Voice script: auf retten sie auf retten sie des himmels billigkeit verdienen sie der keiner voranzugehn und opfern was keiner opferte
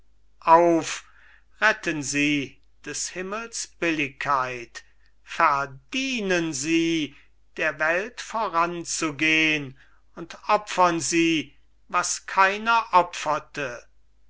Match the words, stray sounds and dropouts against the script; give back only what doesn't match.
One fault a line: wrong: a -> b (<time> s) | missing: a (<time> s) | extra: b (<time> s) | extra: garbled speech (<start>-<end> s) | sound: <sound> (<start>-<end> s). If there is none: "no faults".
missing: auf retten sie (2.6 s)
wrong: keiner -> welt (7.8 s)
extra: sie (11.0 s)